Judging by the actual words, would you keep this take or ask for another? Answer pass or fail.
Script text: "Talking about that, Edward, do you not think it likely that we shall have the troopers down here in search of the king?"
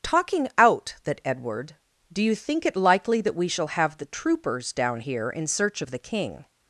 fail